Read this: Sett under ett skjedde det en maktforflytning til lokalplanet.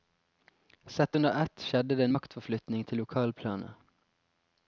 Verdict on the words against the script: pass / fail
pass